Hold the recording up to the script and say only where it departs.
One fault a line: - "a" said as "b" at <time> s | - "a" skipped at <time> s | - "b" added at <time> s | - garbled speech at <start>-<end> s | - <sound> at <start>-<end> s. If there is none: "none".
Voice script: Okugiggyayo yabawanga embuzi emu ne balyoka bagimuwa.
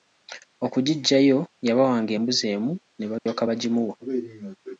- dropout at 3.2-3.3 s